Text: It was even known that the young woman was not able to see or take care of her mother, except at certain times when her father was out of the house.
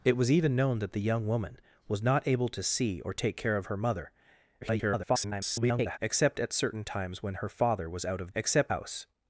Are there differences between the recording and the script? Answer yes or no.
yes